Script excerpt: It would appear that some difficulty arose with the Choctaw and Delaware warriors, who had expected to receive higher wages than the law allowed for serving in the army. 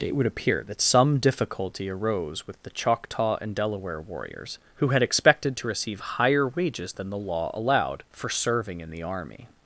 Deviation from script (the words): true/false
false